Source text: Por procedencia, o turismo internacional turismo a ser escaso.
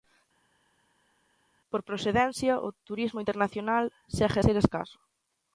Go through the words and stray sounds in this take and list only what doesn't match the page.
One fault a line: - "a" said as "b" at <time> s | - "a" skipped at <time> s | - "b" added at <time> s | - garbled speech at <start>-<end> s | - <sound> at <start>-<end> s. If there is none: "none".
- "turismo" said as "segue" at 4.2 s